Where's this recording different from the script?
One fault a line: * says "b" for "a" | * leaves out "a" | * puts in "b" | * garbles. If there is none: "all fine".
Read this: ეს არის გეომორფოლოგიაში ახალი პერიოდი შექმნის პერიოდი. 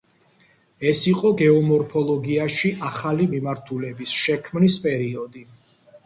* says "იყო" for "არის"
* says "მიმართულების" for "პერიოდი"